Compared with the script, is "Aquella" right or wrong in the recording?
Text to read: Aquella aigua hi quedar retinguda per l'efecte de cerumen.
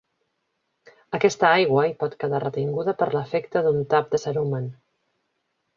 wrong